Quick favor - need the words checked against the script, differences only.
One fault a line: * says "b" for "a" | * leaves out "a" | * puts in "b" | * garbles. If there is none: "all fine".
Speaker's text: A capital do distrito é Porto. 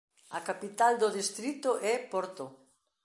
all fine